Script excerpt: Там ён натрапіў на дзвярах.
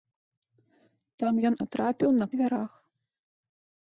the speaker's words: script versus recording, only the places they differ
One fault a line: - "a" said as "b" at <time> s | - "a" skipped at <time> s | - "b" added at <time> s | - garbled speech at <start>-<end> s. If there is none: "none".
none